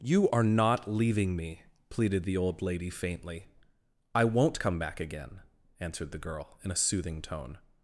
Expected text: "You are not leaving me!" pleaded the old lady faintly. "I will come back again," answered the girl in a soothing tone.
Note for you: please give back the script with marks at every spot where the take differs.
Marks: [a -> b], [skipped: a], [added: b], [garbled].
"You are not leaving me!" pleaded the old lady faintly. "I [will -> won't] come back again," answered the girl in a soothing tone.